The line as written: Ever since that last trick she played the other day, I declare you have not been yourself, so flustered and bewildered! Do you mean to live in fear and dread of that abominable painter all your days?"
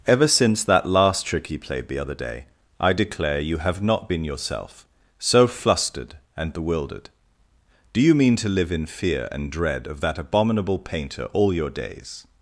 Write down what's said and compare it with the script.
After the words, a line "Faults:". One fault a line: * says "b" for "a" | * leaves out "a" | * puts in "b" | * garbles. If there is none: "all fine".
Ever since that last trick he played the other day, I declare you have not been yourself, so flustered and bewildered! Do you mean to live in fear and dread of that abominable painter all your days?"
Faults:
* says "he" for "she"